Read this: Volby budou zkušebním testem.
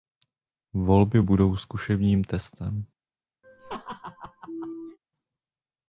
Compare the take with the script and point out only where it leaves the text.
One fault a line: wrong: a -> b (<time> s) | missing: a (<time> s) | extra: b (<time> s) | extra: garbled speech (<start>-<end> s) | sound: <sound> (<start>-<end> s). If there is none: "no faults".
sound: laugh (3.4-5.0 s)